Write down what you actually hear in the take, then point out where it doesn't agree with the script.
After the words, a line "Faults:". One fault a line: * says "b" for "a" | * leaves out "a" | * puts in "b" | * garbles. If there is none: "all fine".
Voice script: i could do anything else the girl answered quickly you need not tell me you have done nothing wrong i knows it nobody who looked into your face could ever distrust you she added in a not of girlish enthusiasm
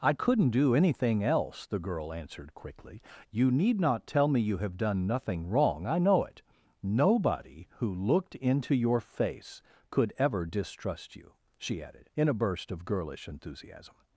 i couldn't do anything else the girl answered quickly you need not tell me you have done nothing wrong i know it nobody who looked into your face could ever distrust you she added in a burst of girlish enthusiasm
Faults:
* says "couldn't" for "could"
* says "know" for "knows"
* says "burst" for "not"